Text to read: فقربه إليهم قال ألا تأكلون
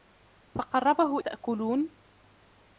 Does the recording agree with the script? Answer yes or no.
no